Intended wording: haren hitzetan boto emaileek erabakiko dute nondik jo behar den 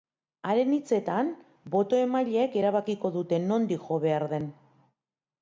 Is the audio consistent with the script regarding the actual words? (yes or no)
yes